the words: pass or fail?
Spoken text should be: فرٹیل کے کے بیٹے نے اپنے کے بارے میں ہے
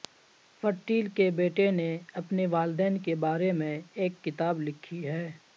fail